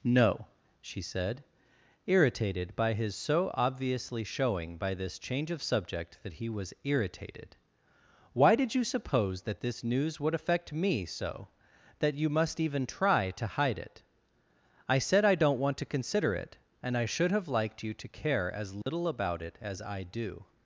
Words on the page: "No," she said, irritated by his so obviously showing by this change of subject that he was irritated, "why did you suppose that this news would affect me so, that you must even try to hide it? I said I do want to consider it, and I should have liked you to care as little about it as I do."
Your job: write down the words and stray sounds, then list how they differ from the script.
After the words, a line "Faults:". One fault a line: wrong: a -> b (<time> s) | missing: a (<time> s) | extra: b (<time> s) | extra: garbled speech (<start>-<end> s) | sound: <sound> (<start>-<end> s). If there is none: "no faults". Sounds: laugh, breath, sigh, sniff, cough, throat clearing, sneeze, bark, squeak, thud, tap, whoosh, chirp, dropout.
"No," she said, irritated by his so obviously showing by this change of subject that he was irritated, "why did you suppose that this news would affect me so, that you must even try to hide it? I said I don't want to consider it, and I should have liked you to care as little about it as I do."
Faults:
wrong: do -> don't (15.3 s)
sound: dropout (18.8-18.9 s)